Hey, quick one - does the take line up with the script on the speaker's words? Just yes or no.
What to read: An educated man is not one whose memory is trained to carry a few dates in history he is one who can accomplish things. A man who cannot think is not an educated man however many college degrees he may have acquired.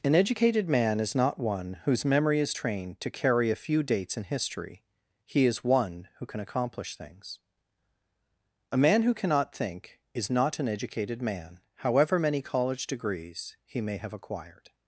yes